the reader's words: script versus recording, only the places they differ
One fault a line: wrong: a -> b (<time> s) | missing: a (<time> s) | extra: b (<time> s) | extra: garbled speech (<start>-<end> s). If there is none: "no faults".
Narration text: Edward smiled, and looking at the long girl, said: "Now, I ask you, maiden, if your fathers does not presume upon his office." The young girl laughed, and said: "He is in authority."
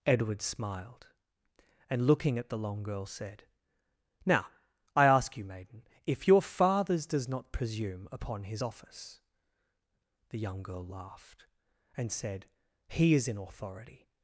no faults